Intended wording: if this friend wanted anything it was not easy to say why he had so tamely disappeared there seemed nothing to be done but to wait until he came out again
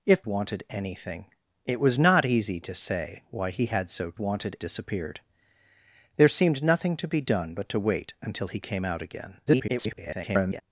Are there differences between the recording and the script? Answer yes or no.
yes